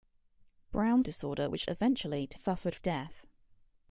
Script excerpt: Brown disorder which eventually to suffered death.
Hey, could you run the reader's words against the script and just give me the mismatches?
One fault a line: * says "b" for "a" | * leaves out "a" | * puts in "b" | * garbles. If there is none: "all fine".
all fine